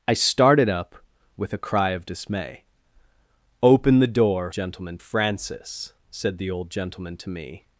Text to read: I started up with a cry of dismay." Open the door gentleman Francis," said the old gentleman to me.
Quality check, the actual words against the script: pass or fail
pass